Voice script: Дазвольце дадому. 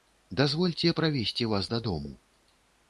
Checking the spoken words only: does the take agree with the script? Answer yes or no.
no